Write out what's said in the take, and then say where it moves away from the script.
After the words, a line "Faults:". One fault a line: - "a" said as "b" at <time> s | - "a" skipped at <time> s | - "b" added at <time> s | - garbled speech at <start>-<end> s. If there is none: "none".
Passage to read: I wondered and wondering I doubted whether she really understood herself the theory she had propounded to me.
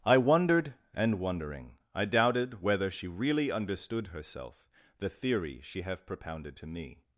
I wondered and wondering I doubted whether she really understood herself the theory she have propounded to me.
Faults:
- "had" said as "have" at 5.8 s